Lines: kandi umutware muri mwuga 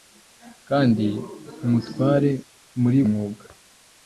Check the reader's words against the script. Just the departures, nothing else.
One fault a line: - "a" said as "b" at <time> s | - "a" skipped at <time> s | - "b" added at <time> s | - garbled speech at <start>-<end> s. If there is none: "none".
none